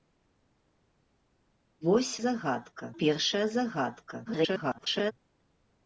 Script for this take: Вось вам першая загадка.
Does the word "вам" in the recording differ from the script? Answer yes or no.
yes